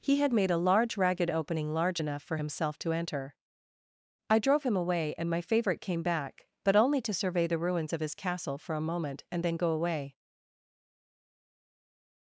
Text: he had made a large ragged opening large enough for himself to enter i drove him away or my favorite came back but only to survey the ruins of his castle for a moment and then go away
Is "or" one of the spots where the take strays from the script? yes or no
yes